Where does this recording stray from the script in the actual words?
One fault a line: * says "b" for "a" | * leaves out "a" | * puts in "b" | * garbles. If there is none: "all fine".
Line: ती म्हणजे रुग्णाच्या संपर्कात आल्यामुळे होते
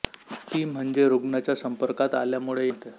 all fine